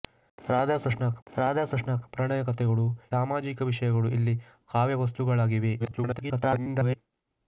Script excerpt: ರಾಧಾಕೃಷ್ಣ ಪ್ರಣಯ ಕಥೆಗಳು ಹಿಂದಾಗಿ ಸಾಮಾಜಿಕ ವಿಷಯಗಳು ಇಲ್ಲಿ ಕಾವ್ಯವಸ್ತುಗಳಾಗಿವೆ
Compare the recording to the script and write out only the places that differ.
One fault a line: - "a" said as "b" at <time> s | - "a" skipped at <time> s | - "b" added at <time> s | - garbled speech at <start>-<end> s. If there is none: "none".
- "ರಾಧಾಕೃಷ್ಣ" added at 1.3 s
- "ಹಿಂದಾಗಿ" skipped at 2.8 s
- garbled speech at 5.8-7.0 s